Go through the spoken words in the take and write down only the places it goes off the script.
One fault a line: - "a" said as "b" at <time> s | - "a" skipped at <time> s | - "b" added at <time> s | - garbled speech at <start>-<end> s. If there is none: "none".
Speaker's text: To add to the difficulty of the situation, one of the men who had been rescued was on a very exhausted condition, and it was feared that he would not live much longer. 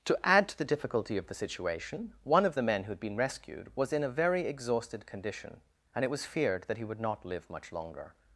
- "on" said as "in" at 3.9 s